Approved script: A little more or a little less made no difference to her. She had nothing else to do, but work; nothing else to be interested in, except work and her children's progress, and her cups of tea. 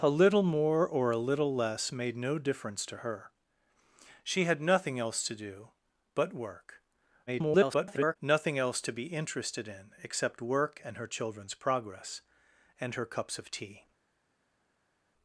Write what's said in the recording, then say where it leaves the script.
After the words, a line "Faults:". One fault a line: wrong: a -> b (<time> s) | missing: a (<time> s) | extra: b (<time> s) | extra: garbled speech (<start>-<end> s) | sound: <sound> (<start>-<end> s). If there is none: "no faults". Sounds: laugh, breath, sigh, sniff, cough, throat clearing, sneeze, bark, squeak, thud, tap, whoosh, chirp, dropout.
A little more or a little less made no difference to her. She had nothing else to do, but work; [garbled] nothing else to be interested in, except work and her children's progress, and her cups of tea.
Faults:
extra: garbled speech (7.3-8.2 s)